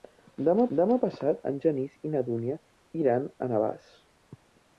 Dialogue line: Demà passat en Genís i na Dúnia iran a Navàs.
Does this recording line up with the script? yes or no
no